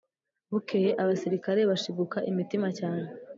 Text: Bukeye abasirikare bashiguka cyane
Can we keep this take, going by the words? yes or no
no